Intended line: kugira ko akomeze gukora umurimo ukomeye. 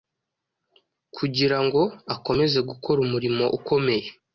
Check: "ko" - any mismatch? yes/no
yes